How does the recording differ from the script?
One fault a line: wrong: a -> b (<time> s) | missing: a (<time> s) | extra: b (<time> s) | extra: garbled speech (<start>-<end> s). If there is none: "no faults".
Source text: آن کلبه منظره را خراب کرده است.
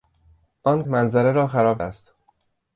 missing: کلبه (0.8 s)
missing: کرده (1.8 s)